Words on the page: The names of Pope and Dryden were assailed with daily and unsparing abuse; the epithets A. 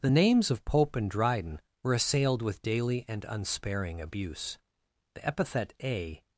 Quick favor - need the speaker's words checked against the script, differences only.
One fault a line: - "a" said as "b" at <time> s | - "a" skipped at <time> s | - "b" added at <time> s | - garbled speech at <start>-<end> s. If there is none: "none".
- "epithets" said as "epithet" at 5.3 s